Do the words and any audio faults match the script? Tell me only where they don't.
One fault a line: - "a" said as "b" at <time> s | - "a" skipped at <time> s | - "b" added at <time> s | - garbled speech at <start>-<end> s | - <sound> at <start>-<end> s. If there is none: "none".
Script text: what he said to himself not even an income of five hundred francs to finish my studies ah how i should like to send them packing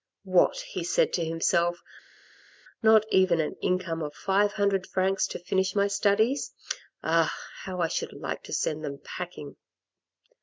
none